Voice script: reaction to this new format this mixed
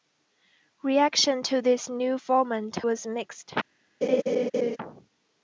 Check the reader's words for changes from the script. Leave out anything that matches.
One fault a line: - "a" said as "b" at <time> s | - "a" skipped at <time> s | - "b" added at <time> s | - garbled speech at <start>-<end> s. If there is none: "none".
- "this" said as "was" at 2.8 s